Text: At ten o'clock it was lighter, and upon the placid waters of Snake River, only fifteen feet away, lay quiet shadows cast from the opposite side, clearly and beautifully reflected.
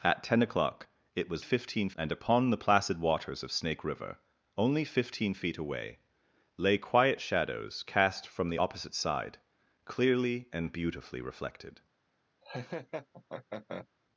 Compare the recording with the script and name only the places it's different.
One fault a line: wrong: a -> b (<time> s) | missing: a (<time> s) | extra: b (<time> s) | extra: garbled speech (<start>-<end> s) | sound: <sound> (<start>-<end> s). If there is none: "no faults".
wrong: lighter -> fifteen (1.4 s)
sound: laugh (12.4-13.9 s)